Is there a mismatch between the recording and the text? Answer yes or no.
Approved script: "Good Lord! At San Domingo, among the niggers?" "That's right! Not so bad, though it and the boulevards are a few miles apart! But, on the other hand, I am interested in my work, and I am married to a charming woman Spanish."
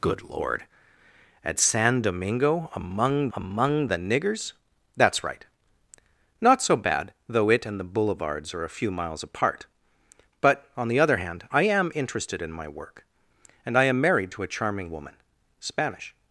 yes